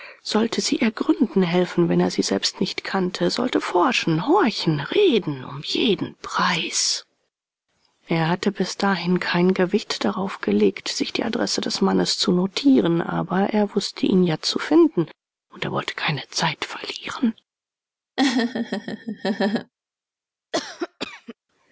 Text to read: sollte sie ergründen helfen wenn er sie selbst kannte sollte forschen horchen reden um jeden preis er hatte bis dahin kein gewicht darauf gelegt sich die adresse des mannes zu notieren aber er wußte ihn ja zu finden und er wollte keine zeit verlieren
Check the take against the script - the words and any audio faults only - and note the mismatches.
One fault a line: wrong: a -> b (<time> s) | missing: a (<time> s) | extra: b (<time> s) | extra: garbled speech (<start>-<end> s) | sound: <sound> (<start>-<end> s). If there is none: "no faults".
extra: nicht (2.6 s)
sound: laugh (18.2-19.7 s)
sound: cough (20.5-21.3 s)